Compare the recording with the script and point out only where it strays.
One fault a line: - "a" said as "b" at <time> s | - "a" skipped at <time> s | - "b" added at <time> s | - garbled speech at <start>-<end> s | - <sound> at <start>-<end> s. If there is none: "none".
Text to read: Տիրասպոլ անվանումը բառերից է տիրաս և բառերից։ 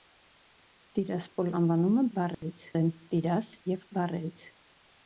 - dropout at 2.3-2.4 s